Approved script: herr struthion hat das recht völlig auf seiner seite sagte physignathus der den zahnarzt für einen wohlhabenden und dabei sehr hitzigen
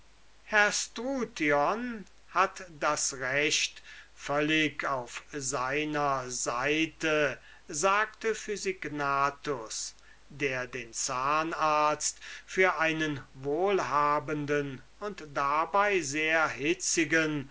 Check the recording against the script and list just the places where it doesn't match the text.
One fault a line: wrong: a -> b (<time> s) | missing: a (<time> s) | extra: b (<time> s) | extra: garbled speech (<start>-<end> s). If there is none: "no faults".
no faults